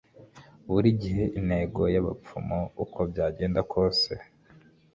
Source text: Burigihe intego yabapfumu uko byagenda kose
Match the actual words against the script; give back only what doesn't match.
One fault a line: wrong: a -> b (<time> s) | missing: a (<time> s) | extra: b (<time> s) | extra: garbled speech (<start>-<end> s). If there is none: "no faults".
no faults